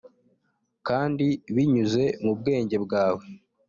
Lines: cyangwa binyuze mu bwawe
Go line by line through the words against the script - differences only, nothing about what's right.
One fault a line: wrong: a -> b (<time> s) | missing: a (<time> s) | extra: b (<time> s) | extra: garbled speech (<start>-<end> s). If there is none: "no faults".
wrong: cyangwa -> kandi (0.9 s)
extra: bwenge (2.4 s)